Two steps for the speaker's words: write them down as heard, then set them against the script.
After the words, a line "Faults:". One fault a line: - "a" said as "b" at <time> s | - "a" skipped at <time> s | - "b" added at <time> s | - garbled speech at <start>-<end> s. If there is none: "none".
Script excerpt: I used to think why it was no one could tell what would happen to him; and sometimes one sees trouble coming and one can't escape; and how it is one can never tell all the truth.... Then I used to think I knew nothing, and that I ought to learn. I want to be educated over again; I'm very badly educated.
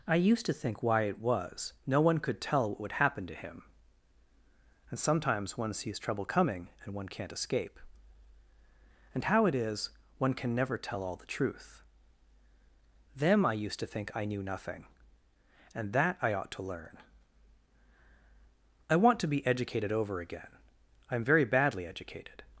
I used to think why it was no one could tell what would happen to him; and sometimes one sees trouble coming and one can't escape; and how it is one can never tell all the truth.... Them I used to think I knew nothing, and that I ought to learn. I want to be educated over again; I'm very badly educated.
Faults:
- "Then" said as "Them" at 13.2 s